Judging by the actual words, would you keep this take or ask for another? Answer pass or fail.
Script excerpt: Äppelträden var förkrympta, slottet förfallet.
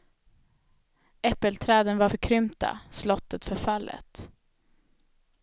pass